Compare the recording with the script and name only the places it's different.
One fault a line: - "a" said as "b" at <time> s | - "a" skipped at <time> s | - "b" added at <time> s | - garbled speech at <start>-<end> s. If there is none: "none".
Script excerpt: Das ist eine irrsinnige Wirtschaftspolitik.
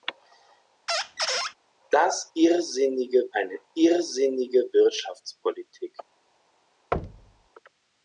- "ist" said as "irrsinnige" at 2.3 s